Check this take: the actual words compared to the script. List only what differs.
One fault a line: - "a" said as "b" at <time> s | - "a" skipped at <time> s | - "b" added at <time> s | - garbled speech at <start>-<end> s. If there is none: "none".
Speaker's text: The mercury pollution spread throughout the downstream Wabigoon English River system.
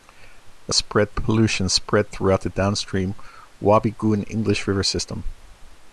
- "mercury" said as "spread" at 0.7 s